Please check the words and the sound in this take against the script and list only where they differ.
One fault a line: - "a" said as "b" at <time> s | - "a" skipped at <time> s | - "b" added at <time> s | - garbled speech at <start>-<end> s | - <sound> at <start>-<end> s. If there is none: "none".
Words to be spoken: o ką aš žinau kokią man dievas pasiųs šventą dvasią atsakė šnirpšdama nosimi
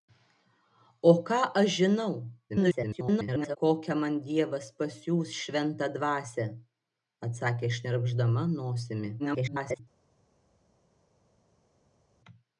- garbled speech at 2.5-3.6 s
- garbled speech at 9.2-9.8 s